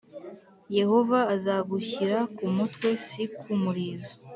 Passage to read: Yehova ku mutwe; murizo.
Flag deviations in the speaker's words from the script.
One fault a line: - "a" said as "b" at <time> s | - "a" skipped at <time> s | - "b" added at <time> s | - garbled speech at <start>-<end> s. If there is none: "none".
- "azagushyira" added at 1.3 s
- "si ku" added at 3.1 s